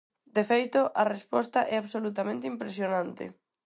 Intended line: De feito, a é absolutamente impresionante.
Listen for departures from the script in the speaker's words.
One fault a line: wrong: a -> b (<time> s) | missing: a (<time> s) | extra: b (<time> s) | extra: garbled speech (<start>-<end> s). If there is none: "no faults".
extra: resposta (1.1 s)